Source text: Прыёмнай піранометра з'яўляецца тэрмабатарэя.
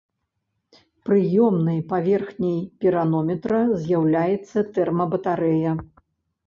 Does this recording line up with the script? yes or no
no